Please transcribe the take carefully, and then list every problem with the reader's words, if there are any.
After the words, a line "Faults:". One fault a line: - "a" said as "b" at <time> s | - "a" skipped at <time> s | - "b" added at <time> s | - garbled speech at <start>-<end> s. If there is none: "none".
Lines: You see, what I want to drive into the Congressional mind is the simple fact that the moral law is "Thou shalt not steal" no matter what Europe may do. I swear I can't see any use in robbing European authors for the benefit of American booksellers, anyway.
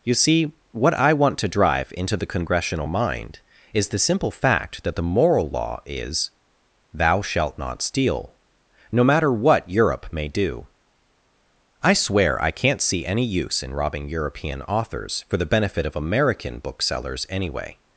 You see, what I want to drive into the Congressional mind is the simple fact that the moral law is "Thou shalt not steal" no matter what Europe may do. I swear I can't see any use in robbing European authors for the benefit of American booksellers, anyway.
Faults:
none